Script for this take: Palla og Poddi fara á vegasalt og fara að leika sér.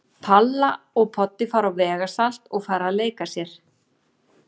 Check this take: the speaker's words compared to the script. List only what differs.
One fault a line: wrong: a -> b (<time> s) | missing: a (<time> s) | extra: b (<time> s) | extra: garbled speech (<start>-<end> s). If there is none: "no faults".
no faults